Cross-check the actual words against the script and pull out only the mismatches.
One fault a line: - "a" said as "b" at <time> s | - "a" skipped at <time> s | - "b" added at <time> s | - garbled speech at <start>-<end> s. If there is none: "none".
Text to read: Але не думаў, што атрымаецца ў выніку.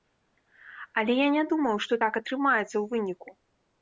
- "я" added at 1.2 s
- "так" added at 2.0 s